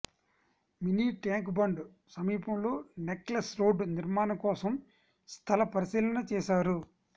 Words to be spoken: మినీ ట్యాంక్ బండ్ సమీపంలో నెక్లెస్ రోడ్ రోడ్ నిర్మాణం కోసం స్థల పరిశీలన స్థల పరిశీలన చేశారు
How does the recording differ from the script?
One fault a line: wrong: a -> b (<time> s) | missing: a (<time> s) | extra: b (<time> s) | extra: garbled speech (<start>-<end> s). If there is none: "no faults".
missing: రోడ్ (3.8 s)
missing: స్థల పరిశీలన (6.2 s)